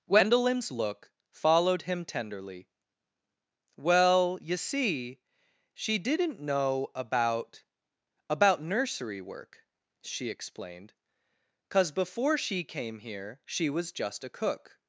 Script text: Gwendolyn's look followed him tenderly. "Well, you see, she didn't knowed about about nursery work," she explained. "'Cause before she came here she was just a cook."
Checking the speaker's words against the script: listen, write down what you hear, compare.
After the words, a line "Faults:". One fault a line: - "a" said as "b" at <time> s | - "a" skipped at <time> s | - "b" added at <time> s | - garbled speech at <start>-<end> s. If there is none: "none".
Gwendolyn's look followed him tenderly. "Well, you see, she didn't know about about nursery work," she explained. "'Cause before she came here she was just a cook."
Faults:
- "knowed" said as "know" at 6.4 s